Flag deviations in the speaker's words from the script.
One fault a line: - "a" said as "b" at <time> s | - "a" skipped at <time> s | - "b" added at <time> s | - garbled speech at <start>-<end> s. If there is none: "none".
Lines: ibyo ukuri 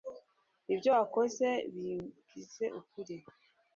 - "wakoze bimbwize" added at 1.0 s